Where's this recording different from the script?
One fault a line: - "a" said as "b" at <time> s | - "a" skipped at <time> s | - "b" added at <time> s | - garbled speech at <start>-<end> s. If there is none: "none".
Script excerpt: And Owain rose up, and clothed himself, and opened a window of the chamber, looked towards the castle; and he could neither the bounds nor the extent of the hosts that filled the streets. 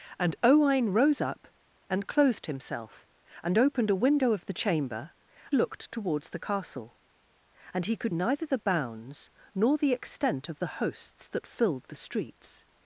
none